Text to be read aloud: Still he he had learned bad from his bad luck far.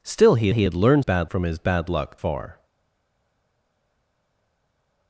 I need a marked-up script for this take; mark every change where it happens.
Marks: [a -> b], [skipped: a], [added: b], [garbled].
Still he he had learned bad from his bad luck far.